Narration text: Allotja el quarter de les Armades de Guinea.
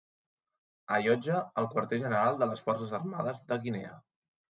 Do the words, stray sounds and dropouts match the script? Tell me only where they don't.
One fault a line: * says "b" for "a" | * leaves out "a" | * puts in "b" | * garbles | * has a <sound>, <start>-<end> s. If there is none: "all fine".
* puts in "general"
* puts in "Forces"